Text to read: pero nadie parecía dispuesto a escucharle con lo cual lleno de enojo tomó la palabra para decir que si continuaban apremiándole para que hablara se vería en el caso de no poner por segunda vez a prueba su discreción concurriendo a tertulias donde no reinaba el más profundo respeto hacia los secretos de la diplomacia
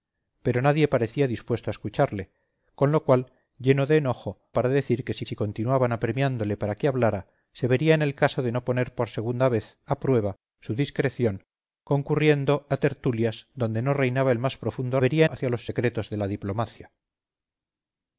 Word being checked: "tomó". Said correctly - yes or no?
no